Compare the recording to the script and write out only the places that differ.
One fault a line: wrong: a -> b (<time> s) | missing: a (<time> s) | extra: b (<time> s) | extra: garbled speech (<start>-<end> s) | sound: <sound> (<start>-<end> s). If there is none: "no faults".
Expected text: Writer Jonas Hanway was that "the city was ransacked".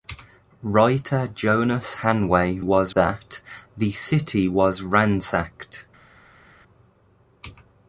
no faults